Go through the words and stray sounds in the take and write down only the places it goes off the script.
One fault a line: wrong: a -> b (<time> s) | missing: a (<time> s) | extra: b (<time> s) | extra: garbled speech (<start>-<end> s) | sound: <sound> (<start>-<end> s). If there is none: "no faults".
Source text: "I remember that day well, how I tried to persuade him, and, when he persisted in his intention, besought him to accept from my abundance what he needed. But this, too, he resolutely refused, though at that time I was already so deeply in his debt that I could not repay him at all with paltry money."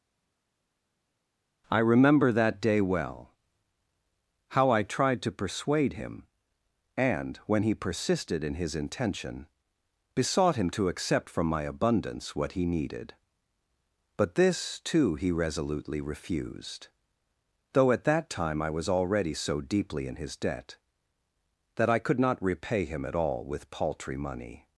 no faults